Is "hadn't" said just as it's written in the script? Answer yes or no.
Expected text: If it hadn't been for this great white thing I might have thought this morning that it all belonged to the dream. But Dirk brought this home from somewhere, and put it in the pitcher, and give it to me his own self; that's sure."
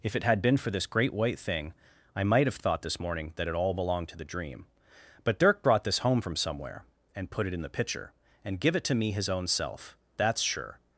no